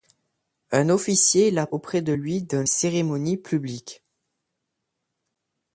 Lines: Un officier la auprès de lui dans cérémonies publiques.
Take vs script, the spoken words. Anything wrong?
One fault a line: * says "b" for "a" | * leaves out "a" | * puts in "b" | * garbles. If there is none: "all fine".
all fine